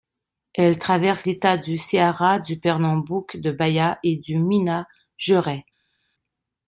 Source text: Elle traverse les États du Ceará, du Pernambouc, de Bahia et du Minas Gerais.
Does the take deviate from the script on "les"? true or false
true